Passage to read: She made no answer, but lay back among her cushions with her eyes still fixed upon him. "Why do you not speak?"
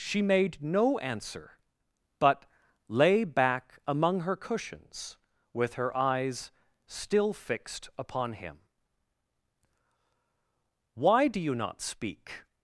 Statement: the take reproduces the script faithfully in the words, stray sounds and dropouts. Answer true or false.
true